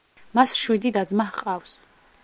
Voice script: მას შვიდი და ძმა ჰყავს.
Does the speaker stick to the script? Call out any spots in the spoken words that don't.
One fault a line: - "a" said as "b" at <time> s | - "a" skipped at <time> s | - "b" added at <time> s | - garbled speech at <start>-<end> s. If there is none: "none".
none